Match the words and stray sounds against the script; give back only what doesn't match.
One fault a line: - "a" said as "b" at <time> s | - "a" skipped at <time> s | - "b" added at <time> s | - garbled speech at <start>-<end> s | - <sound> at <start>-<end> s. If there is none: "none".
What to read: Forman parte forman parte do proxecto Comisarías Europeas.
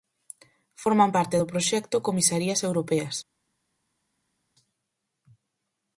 - "forman parte" skipped at 1.4 s